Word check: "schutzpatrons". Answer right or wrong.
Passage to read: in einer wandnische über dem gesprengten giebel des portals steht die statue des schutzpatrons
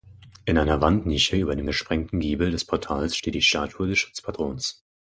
right